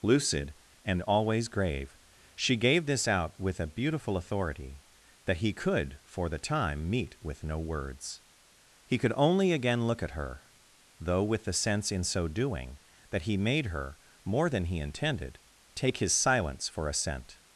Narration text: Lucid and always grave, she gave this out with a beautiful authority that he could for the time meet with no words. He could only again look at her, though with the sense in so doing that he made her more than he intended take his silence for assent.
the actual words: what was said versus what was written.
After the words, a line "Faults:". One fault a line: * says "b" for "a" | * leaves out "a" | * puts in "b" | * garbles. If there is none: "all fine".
Lucid and always grave, she gave this out with a beautiful authority that he could for the time meet with no words. He could only again look at her, though with the sense in so doing that he made her more than he intended take his silence for assent.
Faults:
all fine